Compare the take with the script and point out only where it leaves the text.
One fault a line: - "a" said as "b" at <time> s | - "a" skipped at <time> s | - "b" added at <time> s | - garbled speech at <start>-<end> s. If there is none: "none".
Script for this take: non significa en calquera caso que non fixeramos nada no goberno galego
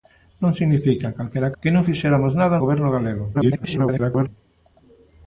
- "caso" skipped at 1.6 s
- "no" skipped at 2.6 s
- garbled speech at 3.3-4.3 s